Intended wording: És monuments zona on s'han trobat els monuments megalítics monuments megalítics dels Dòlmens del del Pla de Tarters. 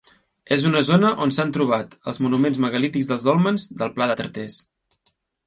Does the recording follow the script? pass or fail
fail